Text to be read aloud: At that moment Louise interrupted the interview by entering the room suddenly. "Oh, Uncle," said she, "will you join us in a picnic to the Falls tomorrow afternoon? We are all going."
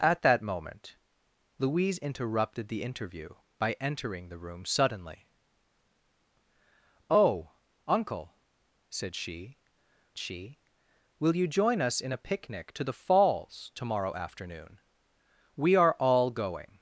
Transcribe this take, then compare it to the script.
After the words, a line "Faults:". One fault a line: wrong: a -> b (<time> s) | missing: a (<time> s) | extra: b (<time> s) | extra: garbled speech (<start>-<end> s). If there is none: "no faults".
At that moment Louise interrupted the interview by entering the room suddenly. "Oh, Uncle," said she she, "will you join us in a picnic to the Falls tomorrow afternoon? We are all going."
Faults:
extra: she (10.2 s)